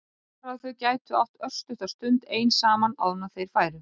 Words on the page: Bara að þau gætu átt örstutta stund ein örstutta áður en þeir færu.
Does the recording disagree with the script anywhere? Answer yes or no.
yes